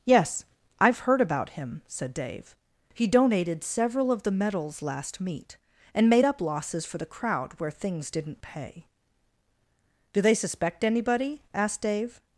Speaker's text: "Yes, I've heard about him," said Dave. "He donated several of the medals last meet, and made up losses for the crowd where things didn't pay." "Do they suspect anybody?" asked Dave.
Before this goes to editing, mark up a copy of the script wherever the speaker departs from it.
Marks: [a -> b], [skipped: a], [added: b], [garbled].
"Yes, I've heard about him," said Dave. "He donated several of the medals last meet, and made up losses for the crowd where things didn't pay." "Do they suspect anybody?" asked Dave.